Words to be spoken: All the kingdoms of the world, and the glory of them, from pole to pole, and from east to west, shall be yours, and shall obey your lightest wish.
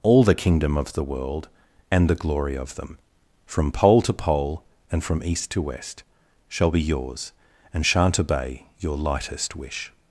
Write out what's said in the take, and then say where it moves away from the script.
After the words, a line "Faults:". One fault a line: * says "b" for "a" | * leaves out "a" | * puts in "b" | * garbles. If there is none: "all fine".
All the kingdom of the world, and the glory of them, from pole to pole, and from east to west, shall be yours, and shan't obey your lightest wish.
Faults:
* says "kingdom" for "kingdoms"
* says "shan't" for "shall"